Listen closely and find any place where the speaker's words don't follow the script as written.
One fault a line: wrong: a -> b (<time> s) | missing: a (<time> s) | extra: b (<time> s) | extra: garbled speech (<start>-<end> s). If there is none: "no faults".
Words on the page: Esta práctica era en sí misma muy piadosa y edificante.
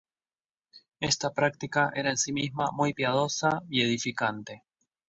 no faults